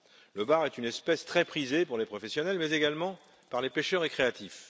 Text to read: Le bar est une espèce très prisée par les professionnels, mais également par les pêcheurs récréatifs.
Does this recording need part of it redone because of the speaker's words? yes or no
no